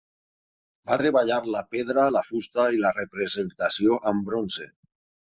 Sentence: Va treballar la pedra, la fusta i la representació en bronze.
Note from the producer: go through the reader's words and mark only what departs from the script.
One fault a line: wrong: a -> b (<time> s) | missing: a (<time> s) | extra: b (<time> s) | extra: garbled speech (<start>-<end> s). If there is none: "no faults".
wrong: en -> amb (4.1 s)